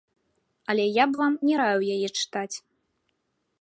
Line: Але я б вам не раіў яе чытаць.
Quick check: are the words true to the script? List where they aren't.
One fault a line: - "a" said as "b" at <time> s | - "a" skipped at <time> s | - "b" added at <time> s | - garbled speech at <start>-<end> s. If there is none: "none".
none